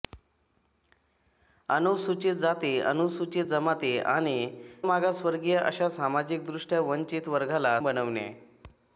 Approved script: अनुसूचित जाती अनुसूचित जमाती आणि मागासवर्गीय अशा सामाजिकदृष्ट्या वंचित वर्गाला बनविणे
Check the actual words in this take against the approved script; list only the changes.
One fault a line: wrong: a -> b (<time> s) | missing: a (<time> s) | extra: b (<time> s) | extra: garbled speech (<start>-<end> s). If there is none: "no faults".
no faults